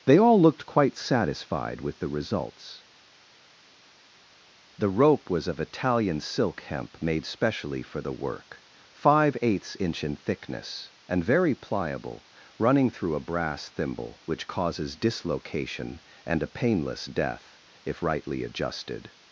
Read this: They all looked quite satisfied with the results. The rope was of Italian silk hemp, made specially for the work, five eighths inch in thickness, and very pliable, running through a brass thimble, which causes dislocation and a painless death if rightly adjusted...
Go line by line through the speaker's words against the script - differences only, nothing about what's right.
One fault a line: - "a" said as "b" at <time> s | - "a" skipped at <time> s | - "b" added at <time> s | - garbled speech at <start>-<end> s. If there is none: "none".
none